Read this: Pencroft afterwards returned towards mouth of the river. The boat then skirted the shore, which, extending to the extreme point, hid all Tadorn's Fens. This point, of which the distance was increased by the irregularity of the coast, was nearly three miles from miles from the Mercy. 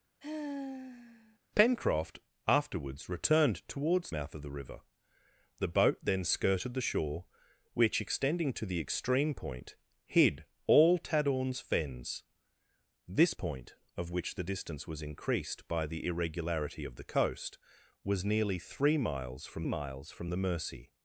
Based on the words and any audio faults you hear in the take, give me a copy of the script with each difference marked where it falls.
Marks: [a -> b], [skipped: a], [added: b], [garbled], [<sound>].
[sigh] Pencroft afterwards returned towards mouth of the river. The boat then skirted the shore, which, extending to the extreme point, hid all Tadorn's Fens. This point, of which the distance was increased by the irregularity of the coast, was nearly three miles from miles from the Mercy.